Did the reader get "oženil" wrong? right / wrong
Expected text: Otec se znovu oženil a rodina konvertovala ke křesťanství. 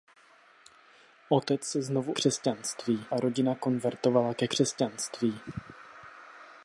wrong